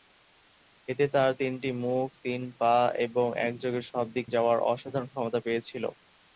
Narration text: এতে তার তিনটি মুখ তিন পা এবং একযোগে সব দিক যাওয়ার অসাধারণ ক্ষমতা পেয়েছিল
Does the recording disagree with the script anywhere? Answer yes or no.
no